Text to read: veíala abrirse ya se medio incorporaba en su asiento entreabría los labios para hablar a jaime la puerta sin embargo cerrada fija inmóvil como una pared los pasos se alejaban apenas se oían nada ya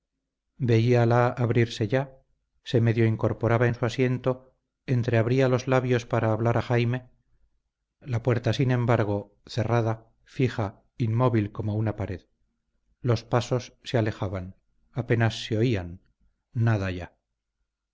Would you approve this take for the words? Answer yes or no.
yes